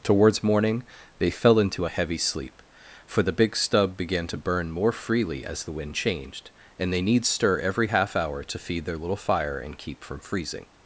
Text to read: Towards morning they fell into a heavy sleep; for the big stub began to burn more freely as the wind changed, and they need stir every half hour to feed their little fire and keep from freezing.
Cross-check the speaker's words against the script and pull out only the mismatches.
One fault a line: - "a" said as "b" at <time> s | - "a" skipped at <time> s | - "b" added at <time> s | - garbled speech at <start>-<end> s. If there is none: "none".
none